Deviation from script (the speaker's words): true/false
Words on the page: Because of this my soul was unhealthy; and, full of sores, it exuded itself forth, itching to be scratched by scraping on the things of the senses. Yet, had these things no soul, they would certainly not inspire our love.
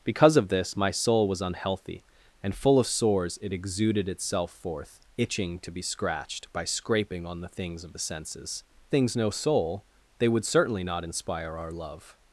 true